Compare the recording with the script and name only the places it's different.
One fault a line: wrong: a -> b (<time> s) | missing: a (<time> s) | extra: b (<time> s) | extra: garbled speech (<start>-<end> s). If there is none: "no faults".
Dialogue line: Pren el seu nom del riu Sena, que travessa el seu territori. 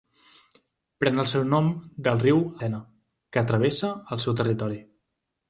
no faults